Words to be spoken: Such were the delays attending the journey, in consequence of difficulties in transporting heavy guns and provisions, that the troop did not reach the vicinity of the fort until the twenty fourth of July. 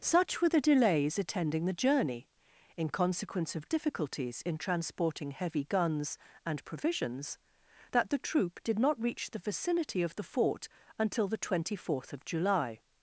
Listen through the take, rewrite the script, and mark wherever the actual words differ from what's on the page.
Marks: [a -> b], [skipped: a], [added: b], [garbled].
Such were the delays attending the journey, in consequence of difficulties in transporting heavy guns and provisions, that the troop did not reach the vicinity of the fort until the twenty fourth of July.